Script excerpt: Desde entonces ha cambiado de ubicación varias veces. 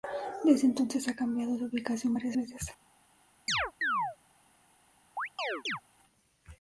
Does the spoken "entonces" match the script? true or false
true